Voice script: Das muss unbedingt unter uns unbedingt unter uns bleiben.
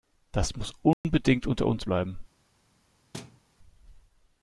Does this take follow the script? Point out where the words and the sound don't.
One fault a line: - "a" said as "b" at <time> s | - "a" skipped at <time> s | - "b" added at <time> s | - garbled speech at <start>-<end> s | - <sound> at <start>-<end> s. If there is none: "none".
- dropout at 0.9-1.0 s
- "unbedingt unter uns" skipped at 1.9 s
- thud at 3.1-3.4 s